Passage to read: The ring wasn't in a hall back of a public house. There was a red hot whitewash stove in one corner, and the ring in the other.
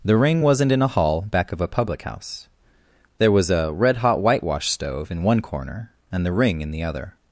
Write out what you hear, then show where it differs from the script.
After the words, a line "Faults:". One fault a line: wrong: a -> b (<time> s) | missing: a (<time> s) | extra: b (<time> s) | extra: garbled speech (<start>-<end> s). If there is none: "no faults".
The ring wasn't in a hall back of a public house. There was a red hot whitewash stove in one corner, and the ring in the other.
Faults:
no faults